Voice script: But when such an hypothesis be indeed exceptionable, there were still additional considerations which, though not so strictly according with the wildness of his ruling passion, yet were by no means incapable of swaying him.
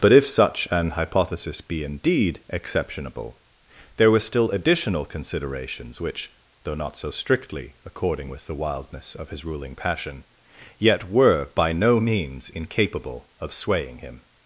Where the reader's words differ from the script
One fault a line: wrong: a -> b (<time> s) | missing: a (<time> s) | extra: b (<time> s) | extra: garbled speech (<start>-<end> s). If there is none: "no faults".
wrong: when -> if (0.1 s)